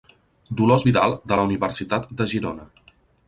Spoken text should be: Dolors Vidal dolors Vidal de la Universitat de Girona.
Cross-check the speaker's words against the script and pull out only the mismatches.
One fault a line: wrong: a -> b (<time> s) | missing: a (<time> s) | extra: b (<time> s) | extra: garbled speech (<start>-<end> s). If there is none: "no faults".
missing: dolors Vidal (1.2 s)